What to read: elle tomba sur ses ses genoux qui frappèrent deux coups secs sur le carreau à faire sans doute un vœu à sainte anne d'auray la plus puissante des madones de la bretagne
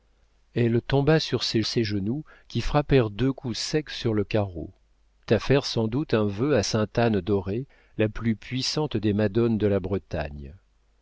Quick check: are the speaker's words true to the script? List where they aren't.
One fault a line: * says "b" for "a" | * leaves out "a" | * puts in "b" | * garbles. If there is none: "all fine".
all fine